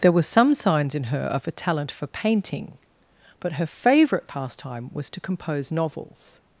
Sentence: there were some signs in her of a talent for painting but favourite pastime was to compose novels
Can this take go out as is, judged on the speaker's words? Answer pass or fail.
fail